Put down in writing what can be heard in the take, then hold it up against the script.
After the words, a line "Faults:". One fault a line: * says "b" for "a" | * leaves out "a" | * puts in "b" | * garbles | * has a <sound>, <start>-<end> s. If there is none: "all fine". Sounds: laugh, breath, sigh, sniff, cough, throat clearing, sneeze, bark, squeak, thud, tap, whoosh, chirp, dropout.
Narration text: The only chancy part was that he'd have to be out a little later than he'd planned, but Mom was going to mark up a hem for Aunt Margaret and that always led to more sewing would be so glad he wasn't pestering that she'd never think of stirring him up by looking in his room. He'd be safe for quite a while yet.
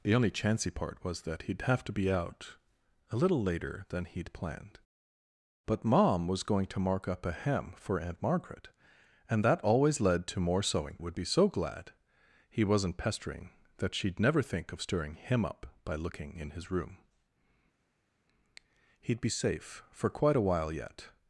The only chancy part was that he'd have to be out a little later than he'd planned, but Mom was going to mark up a hem for Aunt Margaret and that always led to more sewing would be so glad he wasn't pestering that she'd never think of stirring him up by looking in his room. He'd be safe for quite a while yet.
Faults:
all fine